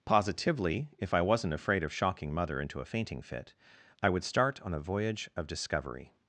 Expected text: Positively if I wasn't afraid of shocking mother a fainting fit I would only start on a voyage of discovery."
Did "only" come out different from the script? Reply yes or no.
yes